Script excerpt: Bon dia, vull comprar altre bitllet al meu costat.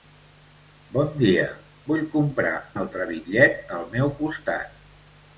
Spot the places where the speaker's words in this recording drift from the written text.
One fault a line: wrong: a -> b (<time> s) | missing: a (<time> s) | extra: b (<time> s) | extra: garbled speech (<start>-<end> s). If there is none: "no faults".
no faults